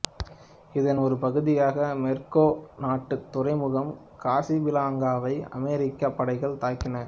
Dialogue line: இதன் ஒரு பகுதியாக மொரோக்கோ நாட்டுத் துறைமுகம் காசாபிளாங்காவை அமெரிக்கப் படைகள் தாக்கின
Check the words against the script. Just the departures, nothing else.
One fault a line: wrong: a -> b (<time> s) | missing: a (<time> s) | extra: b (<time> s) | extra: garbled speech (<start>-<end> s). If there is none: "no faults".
no faults